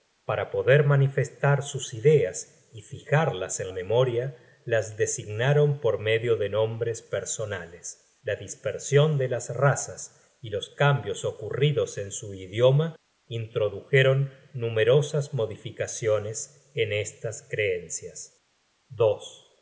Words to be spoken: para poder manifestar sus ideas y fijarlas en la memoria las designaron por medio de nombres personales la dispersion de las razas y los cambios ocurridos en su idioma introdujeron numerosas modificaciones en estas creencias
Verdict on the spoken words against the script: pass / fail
fail